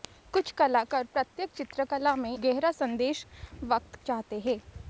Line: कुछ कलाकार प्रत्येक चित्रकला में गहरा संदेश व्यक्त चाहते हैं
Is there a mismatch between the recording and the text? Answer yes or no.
no